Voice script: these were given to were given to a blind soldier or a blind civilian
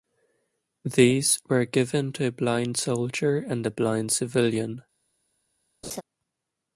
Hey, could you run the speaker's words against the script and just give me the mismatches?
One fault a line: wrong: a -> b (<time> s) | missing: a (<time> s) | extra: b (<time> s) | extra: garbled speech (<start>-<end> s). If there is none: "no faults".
missing: were given to (2.2 s)
wrong: or -> and (3.4 s)